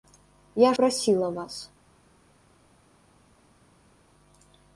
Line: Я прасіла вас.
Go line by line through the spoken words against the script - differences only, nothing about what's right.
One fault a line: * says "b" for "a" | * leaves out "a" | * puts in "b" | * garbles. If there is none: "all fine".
all fine